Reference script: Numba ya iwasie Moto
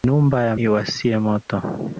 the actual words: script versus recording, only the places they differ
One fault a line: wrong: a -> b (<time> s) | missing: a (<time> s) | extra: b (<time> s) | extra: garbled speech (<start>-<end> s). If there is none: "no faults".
no faults